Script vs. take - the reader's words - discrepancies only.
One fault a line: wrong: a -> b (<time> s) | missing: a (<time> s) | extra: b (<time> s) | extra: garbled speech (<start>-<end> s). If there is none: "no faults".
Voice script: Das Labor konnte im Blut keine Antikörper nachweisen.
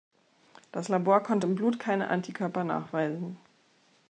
no faults